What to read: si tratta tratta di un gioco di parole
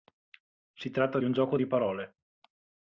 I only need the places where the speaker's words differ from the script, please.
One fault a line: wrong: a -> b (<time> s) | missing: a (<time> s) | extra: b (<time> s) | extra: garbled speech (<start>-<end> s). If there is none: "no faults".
missing: tratta (1.2 s)